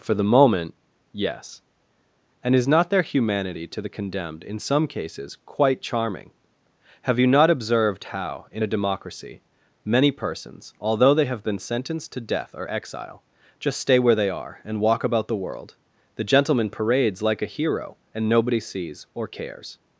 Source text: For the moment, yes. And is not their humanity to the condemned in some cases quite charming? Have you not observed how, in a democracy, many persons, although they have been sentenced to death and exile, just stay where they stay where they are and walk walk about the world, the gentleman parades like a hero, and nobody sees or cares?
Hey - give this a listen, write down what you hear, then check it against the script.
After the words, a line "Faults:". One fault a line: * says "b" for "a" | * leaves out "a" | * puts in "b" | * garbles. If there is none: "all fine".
For the moment, yes. And is not their humanity to the condemned in some cases quite charming? Have you not observed how, in a democracy, many persons, although they have been sentenced to death or exile, just stay where they are and walk about the world, the gentleman parades like a hero, and nobody sees or cares?
Faults:
* says "or" for "and"
* leaves out "stay where they"
* leaves out "walk"